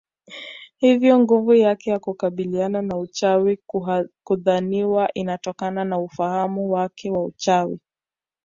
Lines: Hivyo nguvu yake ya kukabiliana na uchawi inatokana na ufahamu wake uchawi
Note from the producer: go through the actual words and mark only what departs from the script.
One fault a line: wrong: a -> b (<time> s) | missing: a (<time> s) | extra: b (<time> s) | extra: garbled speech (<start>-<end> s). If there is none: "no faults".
extra: hudhaniwa (4.2 s)
extra: wa (7.1 s)